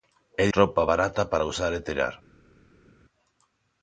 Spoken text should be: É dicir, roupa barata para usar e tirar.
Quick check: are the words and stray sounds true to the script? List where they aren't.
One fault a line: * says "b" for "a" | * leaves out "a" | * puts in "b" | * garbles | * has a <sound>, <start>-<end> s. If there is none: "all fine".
* leaves out "dicir"